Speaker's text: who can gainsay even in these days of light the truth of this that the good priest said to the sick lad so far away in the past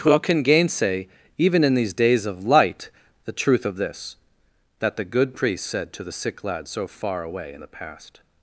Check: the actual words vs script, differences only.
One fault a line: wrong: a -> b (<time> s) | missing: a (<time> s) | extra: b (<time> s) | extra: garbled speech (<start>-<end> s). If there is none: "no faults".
no faults